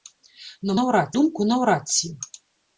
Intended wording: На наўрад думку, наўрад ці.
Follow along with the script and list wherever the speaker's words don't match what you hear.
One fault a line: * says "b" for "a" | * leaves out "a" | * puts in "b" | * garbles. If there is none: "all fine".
all fine